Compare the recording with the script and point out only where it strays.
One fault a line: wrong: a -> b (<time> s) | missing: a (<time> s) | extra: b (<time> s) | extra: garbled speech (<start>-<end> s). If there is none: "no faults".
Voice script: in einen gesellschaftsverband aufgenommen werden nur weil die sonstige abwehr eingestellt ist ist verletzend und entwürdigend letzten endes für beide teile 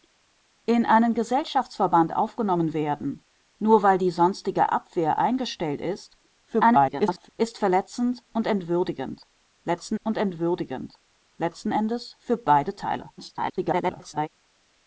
extra: garbled speech (6.5-7.3 s)
extra: und entwürdigend letzten (10.0 s)
extra: garbled speech (13.2-14.3 s)